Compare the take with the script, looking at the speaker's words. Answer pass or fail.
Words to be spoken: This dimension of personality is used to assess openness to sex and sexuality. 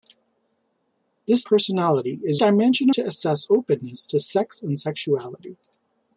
fail